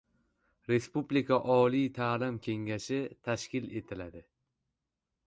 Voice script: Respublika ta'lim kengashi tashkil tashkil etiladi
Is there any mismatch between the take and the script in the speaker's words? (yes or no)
yes